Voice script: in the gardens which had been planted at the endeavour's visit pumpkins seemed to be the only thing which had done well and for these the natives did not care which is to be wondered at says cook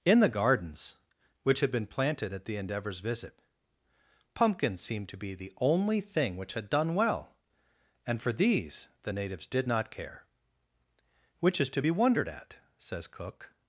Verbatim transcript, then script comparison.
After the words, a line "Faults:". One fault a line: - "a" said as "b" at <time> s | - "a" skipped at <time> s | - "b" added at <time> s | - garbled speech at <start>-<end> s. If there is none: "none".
in the gardens which had been planted at the endeavour's visit pumpkins seemed to be the only thing which had done well and for these the natives did not care which is to be wondered at says cook
Faults:
none